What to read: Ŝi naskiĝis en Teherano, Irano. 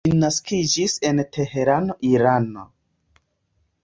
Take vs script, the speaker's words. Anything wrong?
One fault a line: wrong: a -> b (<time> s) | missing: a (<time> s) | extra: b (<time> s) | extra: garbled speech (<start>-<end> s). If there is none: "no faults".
no faults